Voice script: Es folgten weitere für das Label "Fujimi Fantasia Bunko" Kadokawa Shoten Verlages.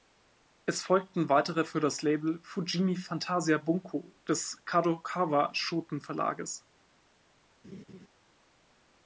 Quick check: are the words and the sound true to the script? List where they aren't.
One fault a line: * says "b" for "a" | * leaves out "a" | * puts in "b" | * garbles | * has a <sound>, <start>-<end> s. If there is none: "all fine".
* puts in "des"
* has a laugh, 7.6-8.1 s